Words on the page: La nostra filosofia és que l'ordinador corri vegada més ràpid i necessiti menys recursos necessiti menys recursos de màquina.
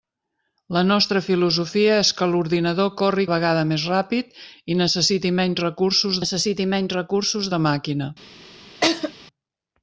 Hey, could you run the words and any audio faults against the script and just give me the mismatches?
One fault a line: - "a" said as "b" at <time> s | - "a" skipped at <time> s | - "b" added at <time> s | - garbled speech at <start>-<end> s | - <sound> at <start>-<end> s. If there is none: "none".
- laugh at 8.8-9.1 s